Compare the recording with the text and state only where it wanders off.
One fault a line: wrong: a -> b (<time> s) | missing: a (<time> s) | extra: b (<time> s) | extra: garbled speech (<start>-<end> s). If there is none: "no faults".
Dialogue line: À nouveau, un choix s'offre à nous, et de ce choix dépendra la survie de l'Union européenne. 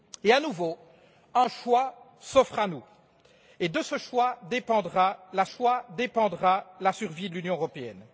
extra: choix dépendra la (5.4 s)